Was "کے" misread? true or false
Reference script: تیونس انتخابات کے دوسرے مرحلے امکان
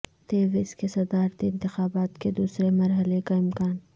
false